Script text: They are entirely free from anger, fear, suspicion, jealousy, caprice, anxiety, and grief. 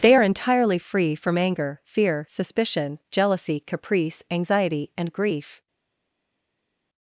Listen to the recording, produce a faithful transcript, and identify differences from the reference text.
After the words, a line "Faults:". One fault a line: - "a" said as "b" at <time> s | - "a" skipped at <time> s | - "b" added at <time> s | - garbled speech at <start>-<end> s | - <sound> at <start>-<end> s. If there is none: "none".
They are entirely free from anger, fear, suspicion, jealousy, caprice, anxiety, and grief.
Faults:
none